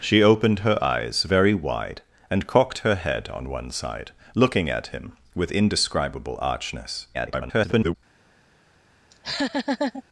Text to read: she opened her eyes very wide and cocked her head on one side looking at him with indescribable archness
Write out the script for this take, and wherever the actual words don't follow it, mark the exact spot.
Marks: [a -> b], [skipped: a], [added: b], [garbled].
she opened her eyes very wide and cocked her head on one side looking at him with indescribable archness [garbled]